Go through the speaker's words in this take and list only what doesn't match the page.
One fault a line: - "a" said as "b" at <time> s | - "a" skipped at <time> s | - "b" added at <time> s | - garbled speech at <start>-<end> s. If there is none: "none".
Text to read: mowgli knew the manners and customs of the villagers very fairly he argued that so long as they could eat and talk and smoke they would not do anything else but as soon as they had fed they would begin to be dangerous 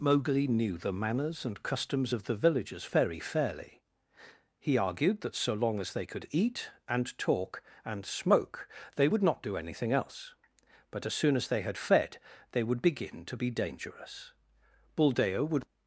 - "buldeo would" added at 15.0 s